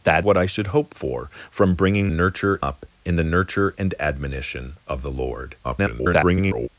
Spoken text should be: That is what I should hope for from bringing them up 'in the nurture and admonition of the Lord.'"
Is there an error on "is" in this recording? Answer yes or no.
yes